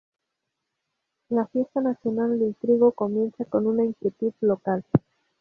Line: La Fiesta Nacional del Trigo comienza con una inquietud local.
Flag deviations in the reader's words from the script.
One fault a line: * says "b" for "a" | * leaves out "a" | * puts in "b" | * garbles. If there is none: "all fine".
all fine